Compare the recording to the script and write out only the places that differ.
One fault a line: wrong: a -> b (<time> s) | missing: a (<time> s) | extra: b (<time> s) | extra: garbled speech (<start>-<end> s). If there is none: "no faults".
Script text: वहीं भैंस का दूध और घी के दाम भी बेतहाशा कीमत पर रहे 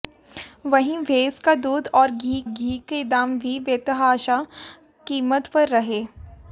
extra: घी (2.5 s)